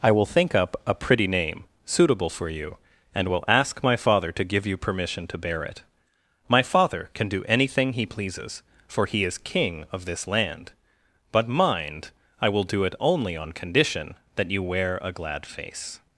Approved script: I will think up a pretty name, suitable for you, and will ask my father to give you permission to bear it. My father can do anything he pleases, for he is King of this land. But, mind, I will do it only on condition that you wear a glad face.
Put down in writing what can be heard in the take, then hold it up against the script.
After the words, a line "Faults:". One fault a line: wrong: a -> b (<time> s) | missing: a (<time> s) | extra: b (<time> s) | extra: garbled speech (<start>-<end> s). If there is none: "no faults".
I will think up a pretty name, suitable for you, and will ask my father to give you permission to bear it. My father can do anything he pleases, for he is King of this land. But, mind, I will do it only on condition that you wear a glad face.
Faults:
no faults